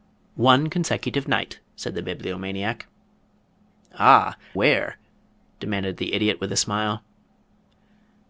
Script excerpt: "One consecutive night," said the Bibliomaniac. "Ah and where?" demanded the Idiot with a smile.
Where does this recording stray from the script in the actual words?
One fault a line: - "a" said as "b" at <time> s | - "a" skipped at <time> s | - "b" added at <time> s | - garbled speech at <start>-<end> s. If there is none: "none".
- "and" skipped at 4.3 s